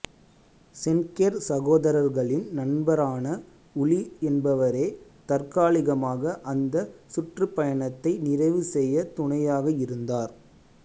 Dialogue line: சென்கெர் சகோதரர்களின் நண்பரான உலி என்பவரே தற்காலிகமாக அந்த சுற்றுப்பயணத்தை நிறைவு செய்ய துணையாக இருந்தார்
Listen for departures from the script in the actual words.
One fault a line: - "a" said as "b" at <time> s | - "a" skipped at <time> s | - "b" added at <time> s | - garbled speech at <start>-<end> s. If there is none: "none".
none